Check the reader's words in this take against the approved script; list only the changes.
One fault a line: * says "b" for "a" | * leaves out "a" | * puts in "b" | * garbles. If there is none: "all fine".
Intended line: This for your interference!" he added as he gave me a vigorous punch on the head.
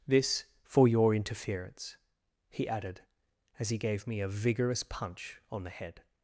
all fine